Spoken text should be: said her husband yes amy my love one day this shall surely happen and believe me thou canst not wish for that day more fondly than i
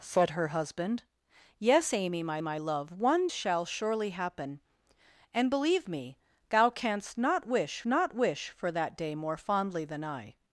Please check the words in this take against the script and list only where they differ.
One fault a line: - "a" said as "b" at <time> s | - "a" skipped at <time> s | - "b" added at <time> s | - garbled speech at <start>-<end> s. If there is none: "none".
- "my" added at 2.4 s
- "day this" skipped at 3.3 s
- "not wish" added at 7.8 s